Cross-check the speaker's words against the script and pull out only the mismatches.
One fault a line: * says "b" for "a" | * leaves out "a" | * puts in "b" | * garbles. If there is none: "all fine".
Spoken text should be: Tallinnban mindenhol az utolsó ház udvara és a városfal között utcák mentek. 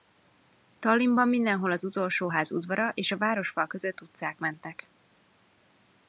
all fine